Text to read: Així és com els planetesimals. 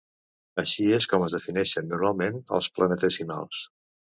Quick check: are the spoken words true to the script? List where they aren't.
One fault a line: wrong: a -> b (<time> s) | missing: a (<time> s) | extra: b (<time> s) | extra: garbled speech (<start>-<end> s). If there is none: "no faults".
extra: es defineixen normalment (1.2 s)